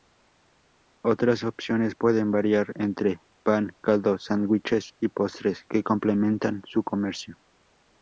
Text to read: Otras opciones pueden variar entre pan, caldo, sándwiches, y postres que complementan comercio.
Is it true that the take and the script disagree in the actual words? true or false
true